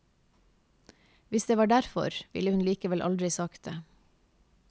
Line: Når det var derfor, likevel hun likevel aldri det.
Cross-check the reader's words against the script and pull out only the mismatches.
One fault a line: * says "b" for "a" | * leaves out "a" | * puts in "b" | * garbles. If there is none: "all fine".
* says "Hvis" for "Når"
* says "ville" for "likevel"
* puts in "sagt"